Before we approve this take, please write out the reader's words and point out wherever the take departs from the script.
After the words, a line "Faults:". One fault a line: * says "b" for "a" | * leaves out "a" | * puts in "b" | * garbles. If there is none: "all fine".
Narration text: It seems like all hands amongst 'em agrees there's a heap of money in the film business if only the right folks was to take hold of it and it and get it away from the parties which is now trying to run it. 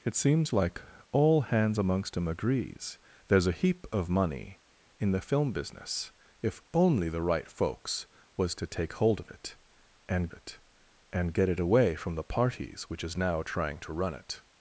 It seems like all hands amongst 'em agrees there's a heap of money in the film business if only the right folks was to take hold of it and it and get it away from the parties which is now trying to run it.
Faults:
all fine